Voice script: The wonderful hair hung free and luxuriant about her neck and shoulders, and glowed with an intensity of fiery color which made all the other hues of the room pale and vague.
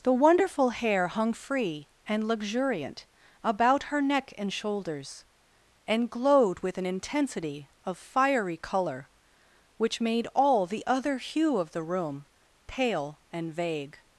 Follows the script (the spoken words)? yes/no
no